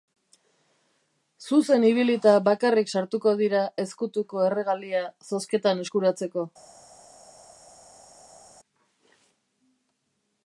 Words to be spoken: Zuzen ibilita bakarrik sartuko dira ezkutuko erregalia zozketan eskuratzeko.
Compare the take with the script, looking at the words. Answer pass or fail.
pass